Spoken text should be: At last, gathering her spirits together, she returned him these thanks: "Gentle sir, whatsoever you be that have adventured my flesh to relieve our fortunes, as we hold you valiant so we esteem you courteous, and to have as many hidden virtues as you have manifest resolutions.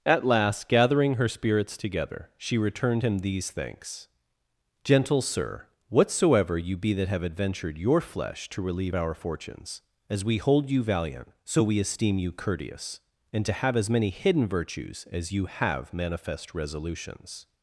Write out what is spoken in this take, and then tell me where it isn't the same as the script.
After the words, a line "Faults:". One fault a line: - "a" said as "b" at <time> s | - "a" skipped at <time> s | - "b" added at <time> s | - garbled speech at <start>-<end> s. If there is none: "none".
At last, gathering her spirits together, she returned him these thanks: "Gentle sir, whatsoever you be that have adventured your flesh to relieve our fortunes, as we hold you valiant so we esteem you courteous, and to have as many hidden virtues as you have manifest resolutions.
Faults:
- "my" said as "your" at 7.8 s